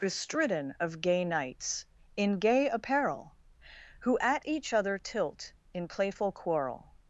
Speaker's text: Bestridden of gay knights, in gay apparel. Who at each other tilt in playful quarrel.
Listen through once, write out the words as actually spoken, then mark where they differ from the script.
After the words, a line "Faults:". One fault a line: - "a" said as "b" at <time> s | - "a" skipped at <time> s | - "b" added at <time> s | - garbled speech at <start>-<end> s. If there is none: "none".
Bestridden of gay knights, in gay apparel. Who at each other tilt in playful quarrel.
Faults:
none